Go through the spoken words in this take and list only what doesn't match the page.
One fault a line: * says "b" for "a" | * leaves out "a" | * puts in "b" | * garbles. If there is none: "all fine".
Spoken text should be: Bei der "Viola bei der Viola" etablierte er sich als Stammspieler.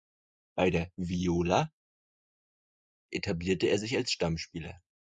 * leaves out "bei der Viola"